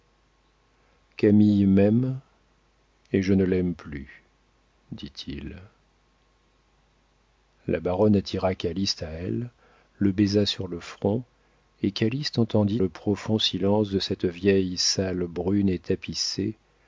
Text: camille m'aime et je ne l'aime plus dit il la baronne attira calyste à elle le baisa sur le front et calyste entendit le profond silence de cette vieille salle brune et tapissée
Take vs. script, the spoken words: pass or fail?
pass